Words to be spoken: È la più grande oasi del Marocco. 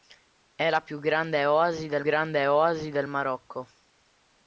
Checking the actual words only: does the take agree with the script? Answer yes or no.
no